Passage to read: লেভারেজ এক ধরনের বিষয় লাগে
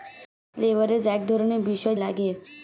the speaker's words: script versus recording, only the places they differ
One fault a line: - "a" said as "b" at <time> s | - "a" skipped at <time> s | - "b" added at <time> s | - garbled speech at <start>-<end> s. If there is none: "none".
none